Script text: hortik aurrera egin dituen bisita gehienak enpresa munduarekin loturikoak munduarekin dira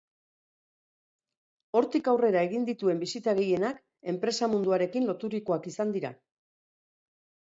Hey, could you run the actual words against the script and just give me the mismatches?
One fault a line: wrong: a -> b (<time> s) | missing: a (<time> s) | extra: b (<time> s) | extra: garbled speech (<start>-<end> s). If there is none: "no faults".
wrong: munduarekin -> izan (5.7 s)